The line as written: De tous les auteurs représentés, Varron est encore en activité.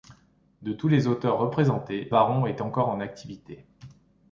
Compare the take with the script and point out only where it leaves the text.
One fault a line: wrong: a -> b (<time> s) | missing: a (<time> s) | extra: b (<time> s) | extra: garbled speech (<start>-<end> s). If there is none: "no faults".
no faults